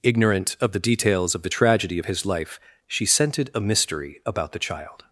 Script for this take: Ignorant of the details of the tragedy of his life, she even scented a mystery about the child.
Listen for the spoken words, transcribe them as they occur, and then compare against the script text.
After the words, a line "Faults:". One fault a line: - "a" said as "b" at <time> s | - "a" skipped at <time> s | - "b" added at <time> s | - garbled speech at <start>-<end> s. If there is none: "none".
Ignorant of the details of the tragedy of his life, she scented a mystery about the child.
Faults:
- "even" skipped at 3.0 s